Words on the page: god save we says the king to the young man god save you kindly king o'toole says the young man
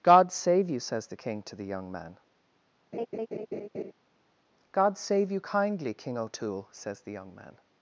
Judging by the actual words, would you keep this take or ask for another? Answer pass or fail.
fail